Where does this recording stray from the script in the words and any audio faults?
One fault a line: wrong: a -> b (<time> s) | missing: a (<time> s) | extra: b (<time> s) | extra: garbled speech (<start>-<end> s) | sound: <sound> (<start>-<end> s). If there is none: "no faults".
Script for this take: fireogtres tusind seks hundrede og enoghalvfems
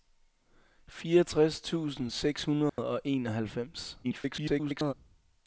sound: dropout (2.7-2.8 s)
extra: garbled speech (4.0-4.9 s)